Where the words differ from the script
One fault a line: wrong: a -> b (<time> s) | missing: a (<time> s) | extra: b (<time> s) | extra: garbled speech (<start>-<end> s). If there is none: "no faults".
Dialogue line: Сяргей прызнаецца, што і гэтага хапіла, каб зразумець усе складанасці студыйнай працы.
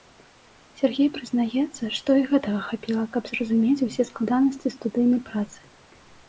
no faults